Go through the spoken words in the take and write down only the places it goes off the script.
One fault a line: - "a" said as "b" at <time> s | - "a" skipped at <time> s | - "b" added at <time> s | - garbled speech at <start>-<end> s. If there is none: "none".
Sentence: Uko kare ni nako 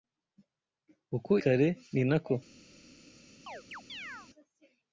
none